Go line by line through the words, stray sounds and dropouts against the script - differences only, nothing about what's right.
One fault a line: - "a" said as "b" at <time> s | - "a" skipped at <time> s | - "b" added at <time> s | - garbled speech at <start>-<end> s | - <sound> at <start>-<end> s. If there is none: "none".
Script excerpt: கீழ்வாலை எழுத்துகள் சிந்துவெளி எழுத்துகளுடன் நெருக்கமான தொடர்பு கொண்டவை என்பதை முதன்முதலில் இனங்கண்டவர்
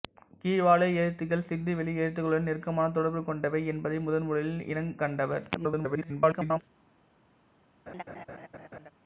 - garbled speech at 5.5-6.6 s
- laugh at 7.9-8.9 s